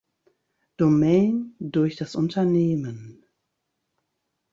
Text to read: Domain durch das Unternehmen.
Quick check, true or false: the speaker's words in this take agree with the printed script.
true